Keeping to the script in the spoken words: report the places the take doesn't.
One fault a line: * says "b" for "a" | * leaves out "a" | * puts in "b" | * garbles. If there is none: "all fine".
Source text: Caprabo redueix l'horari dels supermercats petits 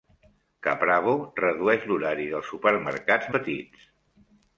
all fine